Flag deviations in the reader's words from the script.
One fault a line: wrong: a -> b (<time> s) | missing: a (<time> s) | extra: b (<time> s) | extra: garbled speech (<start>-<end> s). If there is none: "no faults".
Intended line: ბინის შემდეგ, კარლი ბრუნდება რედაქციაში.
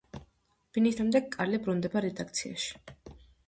no faults